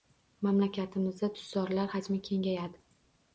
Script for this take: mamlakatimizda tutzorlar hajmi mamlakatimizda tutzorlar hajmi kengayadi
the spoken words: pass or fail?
fail